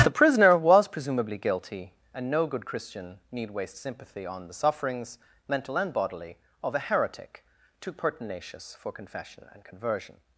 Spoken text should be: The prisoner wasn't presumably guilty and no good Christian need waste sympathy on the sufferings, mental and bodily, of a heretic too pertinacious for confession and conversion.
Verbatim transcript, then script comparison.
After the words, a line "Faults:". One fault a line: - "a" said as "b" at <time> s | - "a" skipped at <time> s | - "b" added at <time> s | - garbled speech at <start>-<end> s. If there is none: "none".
The prisoner was presumably guilty and no good Christian need waste sympathy on the sufferings, mental and bodily, of a heretic too pertinacious for confession and conversion.
Faults:
- "wasn't" said as "was" at 0.6 s